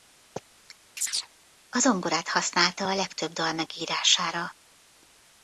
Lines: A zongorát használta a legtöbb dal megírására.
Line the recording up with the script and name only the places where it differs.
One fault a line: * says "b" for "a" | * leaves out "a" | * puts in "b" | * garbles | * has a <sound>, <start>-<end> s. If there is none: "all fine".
* has a chirp, 1.0-1.3 s